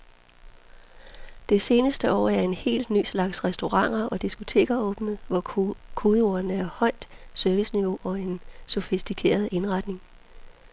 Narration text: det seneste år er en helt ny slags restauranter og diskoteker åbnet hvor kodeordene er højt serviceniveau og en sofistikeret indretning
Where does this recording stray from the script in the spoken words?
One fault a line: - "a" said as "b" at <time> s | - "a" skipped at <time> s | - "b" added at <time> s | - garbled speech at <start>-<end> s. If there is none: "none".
none